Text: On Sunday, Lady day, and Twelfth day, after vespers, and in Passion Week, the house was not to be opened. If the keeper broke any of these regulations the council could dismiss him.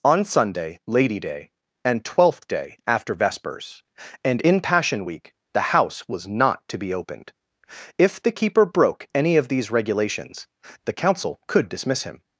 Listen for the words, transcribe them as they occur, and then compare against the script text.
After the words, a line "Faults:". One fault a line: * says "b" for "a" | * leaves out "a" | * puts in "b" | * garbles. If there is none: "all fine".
On Sunday, Lady day, and Twelfth day, after vespers, and in Passion Week, the house was not to be opened. If the keeper broke any of these regulations the council could dismiss him.
Faults:
all fine